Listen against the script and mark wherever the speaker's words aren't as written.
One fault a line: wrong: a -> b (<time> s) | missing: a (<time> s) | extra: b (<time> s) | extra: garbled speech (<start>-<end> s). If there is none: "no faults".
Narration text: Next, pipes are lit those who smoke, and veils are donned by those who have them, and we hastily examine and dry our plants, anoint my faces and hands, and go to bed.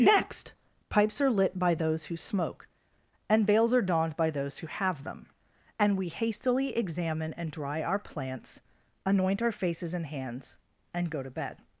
extra: by (1.6 s)
wrong: my -> our (9.4 s)